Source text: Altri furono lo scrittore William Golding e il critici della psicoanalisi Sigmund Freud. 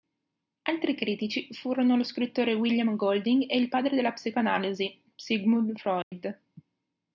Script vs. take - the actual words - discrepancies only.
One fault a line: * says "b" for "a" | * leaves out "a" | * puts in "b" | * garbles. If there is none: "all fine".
* puts in "critici"
* says "padre" for "critici"